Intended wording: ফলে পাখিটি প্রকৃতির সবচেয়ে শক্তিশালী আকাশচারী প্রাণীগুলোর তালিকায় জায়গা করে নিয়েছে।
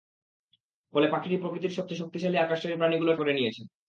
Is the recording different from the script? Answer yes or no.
yes